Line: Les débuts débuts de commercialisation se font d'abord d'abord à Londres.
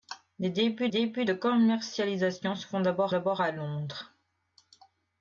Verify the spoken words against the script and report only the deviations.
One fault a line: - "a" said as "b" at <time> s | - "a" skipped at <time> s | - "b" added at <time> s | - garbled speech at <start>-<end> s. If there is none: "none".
none